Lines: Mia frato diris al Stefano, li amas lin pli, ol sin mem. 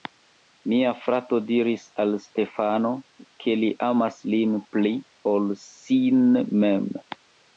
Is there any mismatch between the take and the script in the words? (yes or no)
yes